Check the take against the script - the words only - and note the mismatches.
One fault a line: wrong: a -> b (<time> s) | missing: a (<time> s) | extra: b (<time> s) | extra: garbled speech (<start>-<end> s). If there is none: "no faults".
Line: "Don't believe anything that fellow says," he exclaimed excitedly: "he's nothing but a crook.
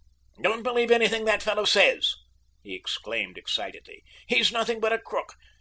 no faults